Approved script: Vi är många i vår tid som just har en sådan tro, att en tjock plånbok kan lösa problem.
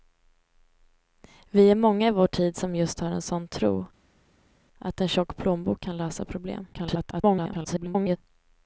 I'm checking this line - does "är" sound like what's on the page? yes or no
yes